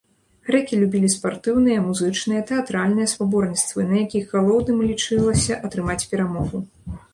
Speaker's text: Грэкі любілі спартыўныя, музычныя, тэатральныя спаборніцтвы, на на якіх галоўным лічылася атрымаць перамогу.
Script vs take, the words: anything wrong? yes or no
yes